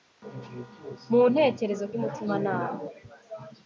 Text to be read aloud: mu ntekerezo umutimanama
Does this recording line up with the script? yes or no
yes